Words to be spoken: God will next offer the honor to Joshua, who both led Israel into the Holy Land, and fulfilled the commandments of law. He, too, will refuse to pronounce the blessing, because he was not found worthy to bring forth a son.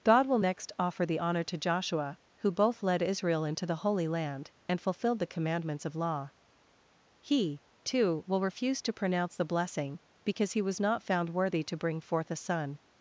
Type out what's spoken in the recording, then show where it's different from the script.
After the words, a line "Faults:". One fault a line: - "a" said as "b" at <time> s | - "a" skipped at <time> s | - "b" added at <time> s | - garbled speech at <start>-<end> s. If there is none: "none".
God will next offer the honor to Joshua, who both led Israel into the Holy Land, and fulfilled the commandments of law. He, too, will refuse to pronounce the blessing, because he was not found worthy to bring forth a son.
Faults:
none